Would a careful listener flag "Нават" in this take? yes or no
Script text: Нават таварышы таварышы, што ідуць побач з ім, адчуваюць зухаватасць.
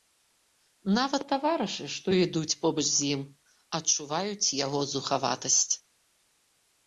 no